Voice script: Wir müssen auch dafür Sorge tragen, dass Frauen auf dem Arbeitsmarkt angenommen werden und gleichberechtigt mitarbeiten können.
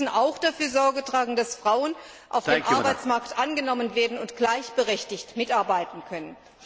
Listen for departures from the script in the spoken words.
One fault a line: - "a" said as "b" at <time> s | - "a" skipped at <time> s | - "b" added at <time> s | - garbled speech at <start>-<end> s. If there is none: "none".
none